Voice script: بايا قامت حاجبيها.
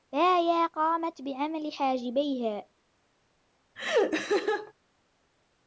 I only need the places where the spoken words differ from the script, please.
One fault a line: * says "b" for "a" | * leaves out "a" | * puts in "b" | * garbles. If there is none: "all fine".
* puts in "بعمل"